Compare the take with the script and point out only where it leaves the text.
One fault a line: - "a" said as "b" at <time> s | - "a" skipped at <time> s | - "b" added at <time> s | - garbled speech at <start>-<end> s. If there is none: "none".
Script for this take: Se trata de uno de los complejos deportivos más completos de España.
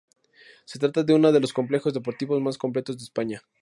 none